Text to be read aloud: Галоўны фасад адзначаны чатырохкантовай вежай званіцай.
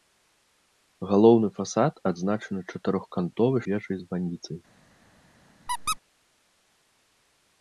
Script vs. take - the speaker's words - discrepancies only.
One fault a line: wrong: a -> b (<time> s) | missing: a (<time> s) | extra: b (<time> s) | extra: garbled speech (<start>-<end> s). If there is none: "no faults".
no faults